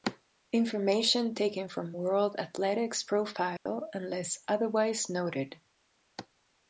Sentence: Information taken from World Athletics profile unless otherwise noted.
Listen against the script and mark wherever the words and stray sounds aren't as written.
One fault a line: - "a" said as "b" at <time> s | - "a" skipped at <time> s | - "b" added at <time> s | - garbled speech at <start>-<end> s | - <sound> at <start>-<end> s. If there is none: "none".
- dropout at 3.6-3.7 s